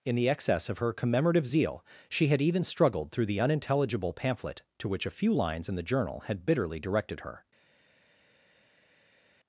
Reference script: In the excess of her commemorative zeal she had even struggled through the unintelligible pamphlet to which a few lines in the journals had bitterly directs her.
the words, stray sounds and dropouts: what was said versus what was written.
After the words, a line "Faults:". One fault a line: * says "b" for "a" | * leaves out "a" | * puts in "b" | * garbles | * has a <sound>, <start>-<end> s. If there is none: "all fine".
In the excess of her commemorative zeal she had even struggled through the unintelligible pamphlet to which a few lines in the journal had bitterly directed her.
Faults:
* says "journal" for "journals"
* says "directed" for "directs"